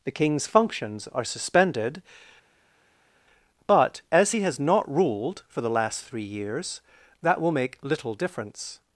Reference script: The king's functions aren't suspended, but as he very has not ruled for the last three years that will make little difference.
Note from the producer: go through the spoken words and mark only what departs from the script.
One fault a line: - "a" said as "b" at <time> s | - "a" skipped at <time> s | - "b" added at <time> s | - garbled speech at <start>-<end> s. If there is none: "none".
- "aren't" said as "are" at 1.1 s
- "very" skipped at 4.4 s